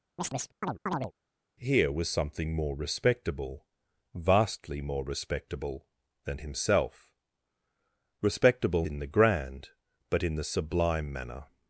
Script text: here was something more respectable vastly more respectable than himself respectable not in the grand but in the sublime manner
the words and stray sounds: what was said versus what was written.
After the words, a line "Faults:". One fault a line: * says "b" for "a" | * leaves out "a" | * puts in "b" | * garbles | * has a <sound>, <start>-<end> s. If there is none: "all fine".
here was something more respectable vastly more respectable than himself respectable in the grand but in the sublime manner
Faults:
* has a chirp, 0.2-1.1 s
* leaves out "not"